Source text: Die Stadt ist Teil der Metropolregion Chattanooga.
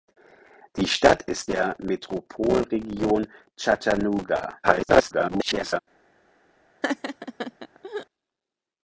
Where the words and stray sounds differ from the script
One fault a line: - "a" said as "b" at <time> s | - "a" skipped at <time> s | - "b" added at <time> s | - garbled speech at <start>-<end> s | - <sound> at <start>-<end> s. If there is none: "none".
- "Teil" skipped at 1.5 s
- garbled speech at 4.6-5.8 s
- laugh at 6.8-8.1 s